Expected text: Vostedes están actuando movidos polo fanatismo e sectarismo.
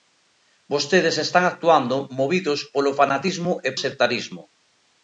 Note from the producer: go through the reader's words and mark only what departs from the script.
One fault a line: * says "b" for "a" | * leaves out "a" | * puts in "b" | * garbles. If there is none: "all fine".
all fine